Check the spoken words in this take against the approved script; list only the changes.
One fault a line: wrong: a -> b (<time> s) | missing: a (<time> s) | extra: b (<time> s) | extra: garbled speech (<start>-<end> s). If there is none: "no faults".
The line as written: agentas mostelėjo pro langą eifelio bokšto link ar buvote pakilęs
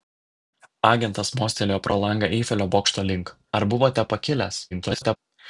extra: garbled speech (4.7-5.2 s)